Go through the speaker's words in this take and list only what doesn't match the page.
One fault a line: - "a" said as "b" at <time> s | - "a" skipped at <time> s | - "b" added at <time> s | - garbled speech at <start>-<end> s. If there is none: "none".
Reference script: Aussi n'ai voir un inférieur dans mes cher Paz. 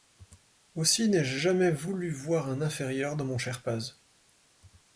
- "je jamais voulu" added at 1.2 s
- "mes" said as "mon" at 3.2 s